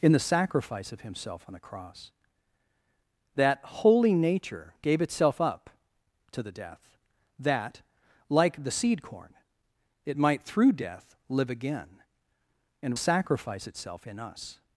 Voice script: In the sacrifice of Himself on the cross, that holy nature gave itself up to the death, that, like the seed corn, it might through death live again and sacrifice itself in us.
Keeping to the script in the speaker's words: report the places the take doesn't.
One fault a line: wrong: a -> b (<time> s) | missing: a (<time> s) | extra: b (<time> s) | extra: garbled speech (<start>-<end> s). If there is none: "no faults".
no faults